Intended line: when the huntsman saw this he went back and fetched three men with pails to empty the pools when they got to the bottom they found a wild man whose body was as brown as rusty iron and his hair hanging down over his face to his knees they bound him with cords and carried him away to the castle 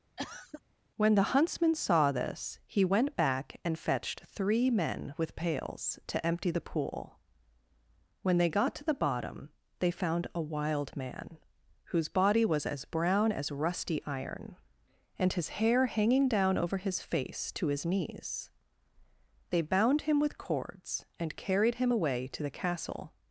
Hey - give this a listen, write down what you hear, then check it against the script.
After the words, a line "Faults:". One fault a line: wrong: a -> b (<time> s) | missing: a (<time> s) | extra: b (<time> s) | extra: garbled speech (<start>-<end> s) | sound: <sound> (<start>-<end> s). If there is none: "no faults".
when the huntsman saw this he went back and fetched three men with pails to empty the pool when they got to the bottom they found a wild man whose body was as brown as rusty iron and his hair hanging down over his face to his knees they bound him with cords and carried him away to the castle
Faults:
sound: cough (0.2-0.6 s)
wrong: pools -> pool (6.6 s)